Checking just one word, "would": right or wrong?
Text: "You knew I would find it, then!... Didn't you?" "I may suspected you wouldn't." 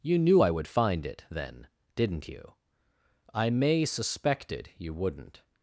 right